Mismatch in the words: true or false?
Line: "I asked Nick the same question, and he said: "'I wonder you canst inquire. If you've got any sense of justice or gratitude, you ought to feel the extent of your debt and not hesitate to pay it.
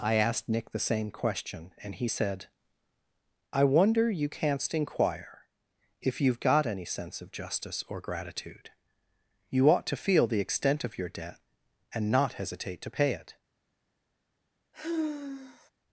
false